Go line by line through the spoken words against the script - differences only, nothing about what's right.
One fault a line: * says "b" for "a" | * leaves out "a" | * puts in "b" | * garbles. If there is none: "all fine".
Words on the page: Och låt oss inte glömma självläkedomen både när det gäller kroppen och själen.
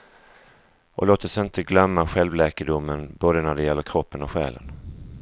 all fine